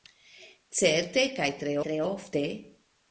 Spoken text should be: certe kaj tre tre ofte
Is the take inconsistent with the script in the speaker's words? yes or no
no